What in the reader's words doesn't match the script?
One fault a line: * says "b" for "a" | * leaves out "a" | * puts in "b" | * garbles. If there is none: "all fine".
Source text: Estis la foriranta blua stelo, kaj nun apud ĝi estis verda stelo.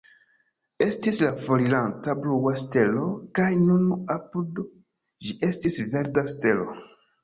all fine